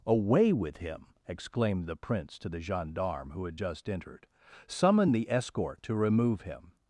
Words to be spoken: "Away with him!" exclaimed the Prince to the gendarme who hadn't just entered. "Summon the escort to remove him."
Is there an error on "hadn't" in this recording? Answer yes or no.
yes